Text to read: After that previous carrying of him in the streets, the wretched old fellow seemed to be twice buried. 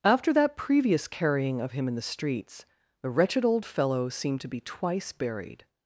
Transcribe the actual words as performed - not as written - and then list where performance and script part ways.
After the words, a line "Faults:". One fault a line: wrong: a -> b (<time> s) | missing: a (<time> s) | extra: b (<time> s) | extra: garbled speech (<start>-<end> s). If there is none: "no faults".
After that previous carrying of him in the streets, the wretched old fellow seemed to be twice buried.
Faults:
no faults